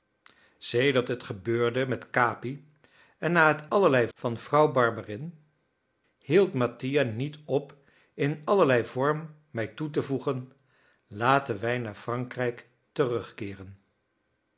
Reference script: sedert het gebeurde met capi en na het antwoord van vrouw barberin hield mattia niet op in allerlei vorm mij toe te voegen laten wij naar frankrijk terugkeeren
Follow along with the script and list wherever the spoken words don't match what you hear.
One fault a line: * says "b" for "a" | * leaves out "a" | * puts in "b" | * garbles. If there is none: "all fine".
* says "allerlei" for "antwoord"